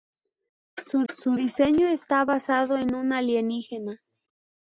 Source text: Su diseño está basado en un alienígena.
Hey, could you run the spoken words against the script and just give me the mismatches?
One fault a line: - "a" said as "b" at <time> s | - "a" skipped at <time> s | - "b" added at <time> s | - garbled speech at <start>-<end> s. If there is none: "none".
- "su" added at 1.1 s